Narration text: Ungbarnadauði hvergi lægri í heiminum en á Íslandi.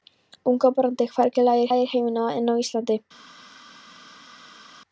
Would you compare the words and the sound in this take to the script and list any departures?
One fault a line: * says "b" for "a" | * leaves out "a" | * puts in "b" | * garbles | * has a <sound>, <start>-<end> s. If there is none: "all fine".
* puts in "lægri"